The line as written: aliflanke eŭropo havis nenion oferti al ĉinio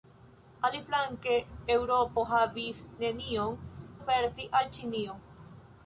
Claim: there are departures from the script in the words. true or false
false